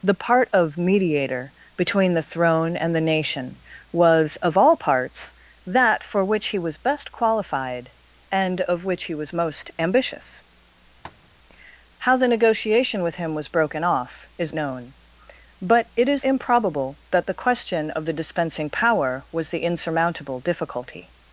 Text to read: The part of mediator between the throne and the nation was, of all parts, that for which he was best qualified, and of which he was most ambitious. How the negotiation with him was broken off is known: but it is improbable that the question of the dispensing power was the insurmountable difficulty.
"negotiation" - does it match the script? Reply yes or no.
yes